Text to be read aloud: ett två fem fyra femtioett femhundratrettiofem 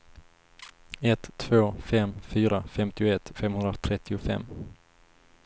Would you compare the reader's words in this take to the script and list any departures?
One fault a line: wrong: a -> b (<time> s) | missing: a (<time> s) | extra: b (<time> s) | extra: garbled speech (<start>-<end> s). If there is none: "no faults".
no faults